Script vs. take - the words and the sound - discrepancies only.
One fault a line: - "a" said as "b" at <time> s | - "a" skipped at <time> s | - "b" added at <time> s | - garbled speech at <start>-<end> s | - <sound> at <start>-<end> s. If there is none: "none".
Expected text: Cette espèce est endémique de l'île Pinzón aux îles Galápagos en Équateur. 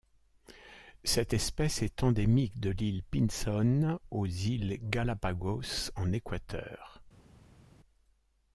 none